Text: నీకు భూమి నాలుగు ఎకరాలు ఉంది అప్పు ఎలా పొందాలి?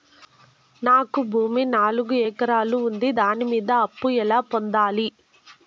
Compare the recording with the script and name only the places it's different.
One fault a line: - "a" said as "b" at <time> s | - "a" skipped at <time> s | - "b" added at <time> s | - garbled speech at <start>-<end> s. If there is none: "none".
- "నీకు" said as "నాకు" at 0.8 s
- "దాని మీద" added at 3.1 s